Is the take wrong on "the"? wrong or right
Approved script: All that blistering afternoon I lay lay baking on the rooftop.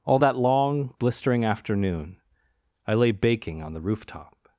right